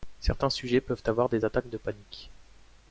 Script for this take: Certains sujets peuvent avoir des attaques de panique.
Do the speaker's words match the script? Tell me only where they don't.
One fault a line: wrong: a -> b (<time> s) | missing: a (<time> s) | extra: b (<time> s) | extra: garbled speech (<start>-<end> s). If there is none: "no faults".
no faults